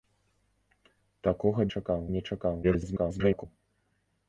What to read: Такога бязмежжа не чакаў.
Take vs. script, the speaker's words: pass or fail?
fail